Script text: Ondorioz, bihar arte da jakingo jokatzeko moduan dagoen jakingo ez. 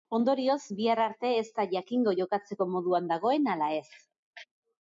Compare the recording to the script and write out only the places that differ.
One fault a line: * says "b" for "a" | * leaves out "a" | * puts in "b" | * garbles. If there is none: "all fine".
* puts in "ez"
* says "ala" for "jakingo"